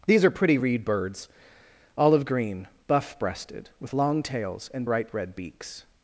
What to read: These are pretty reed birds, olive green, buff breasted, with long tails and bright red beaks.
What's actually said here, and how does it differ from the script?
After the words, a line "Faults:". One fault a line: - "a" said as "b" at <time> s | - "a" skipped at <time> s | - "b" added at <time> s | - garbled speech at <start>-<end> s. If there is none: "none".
These are pretty reed birds, olive green, buff breasted, with long tails and bright red beaks.
Faults:
none